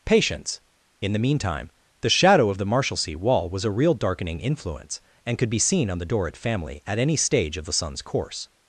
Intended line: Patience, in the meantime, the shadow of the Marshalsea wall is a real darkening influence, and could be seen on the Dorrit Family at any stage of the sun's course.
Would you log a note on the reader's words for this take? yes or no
yes